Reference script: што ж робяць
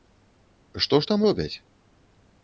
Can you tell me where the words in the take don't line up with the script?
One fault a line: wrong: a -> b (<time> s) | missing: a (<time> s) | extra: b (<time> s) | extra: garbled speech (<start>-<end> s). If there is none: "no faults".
extra: там (1.1 s)